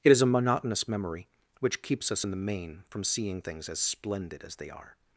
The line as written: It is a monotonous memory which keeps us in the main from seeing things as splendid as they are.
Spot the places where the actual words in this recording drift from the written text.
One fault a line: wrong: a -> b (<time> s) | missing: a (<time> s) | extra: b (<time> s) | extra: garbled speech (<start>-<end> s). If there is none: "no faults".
no faults